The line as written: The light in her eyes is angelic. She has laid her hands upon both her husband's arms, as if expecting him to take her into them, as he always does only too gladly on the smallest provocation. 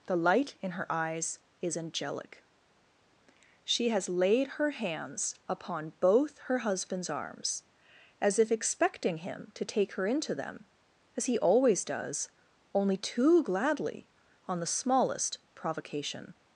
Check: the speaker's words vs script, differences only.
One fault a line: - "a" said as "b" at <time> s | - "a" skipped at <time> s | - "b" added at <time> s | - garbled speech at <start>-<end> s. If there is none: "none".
none